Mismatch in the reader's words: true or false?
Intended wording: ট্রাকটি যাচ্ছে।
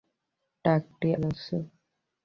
false